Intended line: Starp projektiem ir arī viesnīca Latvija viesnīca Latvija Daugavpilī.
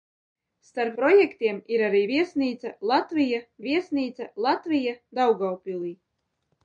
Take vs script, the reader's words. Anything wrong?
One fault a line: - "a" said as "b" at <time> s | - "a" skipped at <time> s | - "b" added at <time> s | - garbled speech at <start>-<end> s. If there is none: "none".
none